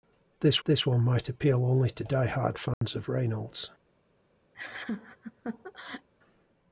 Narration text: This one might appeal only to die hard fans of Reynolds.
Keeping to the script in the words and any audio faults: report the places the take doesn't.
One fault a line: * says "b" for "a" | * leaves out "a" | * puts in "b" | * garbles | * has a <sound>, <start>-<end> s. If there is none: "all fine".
* puts in "this"
* has a dropout, 2.7-2.8 s
* has a laugh, 4.5-6.1 s